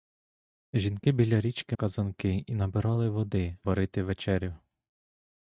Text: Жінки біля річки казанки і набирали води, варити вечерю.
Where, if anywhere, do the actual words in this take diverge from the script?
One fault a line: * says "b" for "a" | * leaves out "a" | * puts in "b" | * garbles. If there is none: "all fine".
all fine